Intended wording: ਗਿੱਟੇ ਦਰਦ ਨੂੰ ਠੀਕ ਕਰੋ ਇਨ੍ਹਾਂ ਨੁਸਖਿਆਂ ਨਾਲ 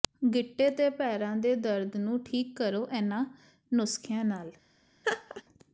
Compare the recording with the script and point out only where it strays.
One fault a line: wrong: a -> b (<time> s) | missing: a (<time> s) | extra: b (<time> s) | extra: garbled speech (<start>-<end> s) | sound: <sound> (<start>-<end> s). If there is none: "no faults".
extra: ਤੇ ਪੈਰਾਂ ਦੇ (0.7 s)
sound: laugh (5.0-5.4 s)